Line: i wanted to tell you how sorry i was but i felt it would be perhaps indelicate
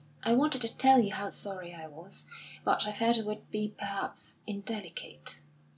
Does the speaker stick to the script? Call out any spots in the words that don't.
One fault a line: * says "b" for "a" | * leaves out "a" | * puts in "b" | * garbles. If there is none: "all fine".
all fine